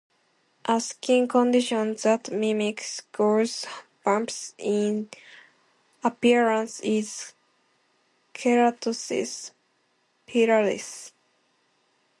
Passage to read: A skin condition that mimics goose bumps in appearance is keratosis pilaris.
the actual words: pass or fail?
pass